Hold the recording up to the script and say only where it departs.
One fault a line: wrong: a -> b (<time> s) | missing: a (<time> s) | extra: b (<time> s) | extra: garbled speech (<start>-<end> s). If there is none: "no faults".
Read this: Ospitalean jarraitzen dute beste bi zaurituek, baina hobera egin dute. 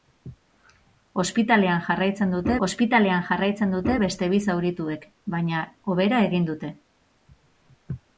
extra: ospitalean jarraitzen dute (2.7 s)